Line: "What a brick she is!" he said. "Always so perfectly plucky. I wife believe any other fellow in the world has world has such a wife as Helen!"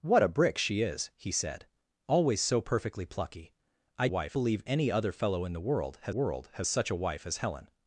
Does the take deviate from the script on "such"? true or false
false